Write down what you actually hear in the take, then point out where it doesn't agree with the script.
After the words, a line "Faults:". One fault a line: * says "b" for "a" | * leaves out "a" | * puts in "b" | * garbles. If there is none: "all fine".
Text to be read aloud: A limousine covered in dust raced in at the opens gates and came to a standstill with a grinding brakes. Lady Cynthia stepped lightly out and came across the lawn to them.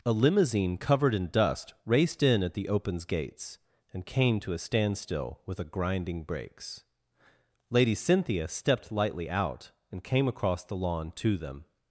A limousine covered in dust raced in at the opens gates and came to a standstill with a grinding brakes. Lady Cynthia stepped lightly out and came across the lawn to them.
Faults:
all fine